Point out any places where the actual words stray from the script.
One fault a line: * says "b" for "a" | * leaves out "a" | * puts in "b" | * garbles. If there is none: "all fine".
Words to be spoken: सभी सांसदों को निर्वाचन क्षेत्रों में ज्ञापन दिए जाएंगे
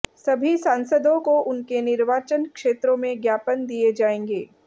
* puts in "उनके"